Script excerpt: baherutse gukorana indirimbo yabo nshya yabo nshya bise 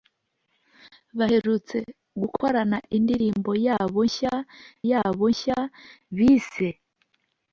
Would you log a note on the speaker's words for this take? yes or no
no